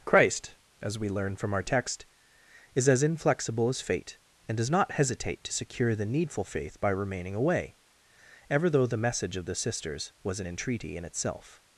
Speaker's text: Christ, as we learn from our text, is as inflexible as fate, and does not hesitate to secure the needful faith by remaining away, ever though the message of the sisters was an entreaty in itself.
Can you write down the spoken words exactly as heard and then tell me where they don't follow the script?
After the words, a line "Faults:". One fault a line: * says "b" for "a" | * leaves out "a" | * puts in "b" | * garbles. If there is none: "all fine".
Christ, as we learn from our text, is as inflexible as fate, and does not hesitate to secure the needful faith by remaining away, ever though the message of the sisters was an entreaty in itself.
Faults:
all fine